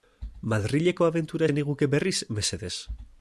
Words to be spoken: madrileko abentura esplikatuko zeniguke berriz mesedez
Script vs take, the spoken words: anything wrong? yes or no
yes